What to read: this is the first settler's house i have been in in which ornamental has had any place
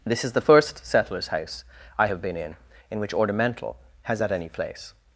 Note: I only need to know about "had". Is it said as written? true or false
true